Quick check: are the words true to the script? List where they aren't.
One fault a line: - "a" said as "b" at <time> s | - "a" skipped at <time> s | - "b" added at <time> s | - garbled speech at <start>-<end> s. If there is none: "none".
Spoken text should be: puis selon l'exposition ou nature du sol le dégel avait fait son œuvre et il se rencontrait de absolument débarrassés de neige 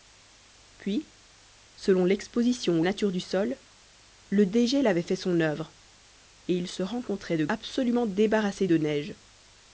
none